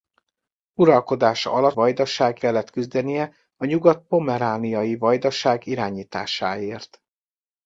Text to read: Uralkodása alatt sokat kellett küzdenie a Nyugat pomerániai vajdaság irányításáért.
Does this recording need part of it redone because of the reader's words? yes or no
yes